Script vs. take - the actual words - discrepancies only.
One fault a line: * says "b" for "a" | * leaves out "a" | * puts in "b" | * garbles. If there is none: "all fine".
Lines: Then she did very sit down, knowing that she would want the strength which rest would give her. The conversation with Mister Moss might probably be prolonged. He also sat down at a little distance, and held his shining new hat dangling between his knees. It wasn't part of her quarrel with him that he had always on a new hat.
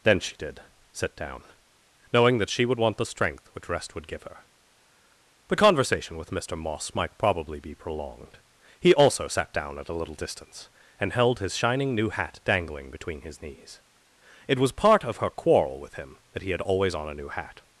* leaves out "very"
* says "was" for "wasn't"